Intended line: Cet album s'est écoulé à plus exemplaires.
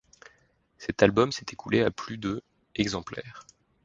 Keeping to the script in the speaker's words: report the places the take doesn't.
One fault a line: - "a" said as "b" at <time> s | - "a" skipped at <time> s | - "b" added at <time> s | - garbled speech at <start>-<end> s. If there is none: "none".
- "de" added at 2.2 s